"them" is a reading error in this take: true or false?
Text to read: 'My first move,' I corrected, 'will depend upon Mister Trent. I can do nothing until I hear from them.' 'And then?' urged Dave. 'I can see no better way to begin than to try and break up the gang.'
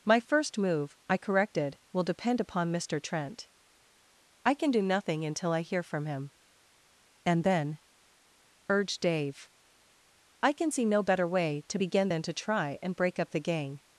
true